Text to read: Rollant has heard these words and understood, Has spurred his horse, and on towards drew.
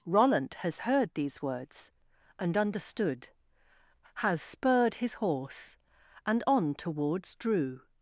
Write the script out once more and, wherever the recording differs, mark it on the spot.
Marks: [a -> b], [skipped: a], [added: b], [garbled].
Rollant has heard these words and understood, Has spurred his horse, and on towards drew.